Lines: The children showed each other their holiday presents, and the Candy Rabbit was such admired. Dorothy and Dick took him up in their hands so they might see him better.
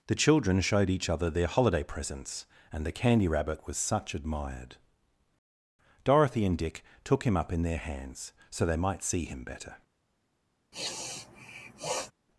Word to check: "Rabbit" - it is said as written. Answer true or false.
true